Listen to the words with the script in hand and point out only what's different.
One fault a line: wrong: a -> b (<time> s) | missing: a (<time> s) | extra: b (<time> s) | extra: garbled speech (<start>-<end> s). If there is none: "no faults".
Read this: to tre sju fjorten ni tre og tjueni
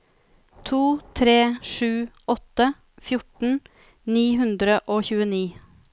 extra: åtte (2.3 s)
wrong: tre -> hundre (4.4 s)